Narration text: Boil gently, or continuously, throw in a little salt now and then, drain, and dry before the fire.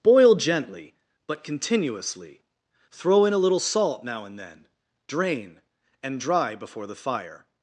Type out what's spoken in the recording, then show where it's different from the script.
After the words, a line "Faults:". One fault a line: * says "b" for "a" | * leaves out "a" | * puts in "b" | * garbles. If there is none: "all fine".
Boil gently, but continuously, throw in a little salt now and then, drain, and dry before the fire.
Faults:
* says "but" for "or"